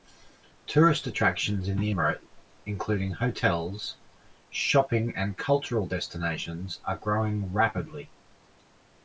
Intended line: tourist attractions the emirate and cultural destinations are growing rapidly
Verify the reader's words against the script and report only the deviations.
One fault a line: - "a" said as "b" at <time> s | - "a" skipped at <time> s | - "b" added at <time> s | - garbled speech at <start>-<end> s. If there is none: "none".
- "in" added at 1.7 s
- "including hotels shopping" added at 2.7 s